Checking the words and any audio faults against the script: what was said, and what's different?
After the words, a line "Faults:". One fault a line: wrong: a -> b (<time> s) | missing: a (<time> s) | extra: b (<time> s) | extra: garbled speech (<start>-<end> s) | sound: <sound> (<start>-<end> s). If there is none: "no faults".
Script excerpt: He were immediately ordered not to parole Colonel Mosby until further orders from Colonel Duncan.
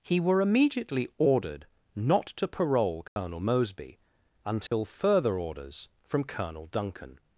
He were immediately ordered not to parole Colonel Mosby until further orders from Colonel Duncan.
Faults:
sound: dropout (3.1-3.2 s)
sound: dropout (4.7-4.7 s)